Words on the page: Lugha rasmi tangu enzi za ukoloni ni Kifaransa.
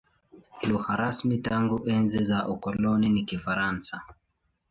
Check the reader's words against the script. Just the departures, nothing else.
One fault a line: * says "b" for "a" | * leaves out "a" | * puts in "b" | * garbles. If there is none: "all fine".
all fine